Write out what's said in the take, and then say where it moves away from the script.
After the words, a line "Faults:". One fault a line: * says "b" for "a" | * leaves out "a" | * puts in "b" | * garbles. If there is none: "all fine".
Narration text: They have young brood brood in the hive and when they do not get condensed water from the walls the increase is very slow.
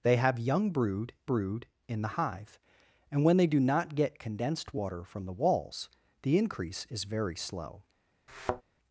They have young brood brood in the hive and when they do not get condensed water from the walls the increase is very slow.
Faults:
all fine